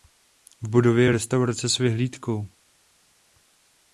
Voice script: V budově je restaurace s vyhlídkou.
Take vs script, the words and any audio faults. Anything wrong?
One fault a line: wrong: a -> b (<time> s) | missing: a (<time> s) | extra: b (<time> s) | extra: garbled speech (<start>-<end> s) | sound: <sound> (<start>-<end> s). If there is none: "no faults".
no faults